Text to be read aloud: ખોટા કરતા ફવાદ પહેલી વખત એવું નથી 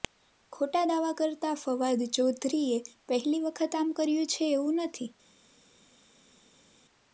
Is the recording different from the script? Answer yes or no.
yes